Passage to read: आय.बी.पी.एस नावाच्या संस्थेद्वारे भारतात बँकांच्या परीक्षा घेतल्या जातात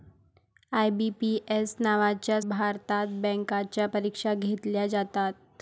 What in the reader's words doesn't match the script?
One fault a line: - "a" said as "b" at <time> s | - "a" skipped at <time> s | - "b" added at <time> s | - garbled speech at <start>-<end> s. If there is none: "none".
- "संस्थेद्वारे" skipped at 2.4 s